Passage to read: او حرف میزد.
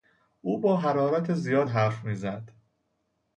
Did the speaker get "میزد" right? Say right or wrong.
right